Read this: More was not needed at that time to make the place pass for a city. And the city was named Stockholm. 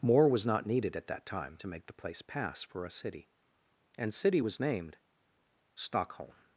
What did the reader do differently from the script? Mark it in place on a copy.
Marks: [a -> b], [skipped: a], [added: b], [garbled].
More was not needed at that time to make the place pass for a city. And [skipped: the] city was named Stockholm.